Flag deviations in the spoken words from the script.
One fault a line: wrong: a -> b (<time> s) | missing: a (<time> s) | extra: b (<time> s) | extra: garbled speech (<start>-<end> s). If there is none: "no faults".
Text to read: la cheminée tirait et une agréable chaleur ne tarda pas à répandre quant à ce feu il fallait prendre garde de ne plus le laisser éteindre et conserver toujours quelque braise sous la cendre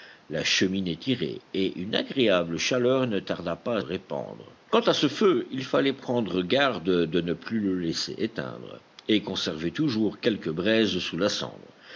no faults